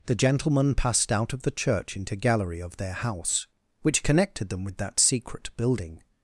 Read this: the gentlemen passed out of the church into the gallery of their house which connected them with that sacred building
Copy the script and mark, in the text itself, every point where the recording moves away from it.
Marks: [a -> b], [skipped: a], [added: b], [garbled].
the gentlemen passed out of the church into [skipped: the] gallery of their house which connected them with that [sacred -> secret] building